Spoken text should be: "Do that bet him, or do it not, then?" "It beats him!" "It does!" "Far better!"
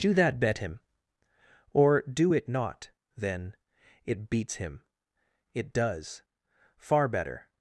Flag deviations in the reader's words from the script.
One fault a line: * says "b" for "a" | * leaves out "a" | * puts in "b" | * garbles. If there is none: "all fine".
all fine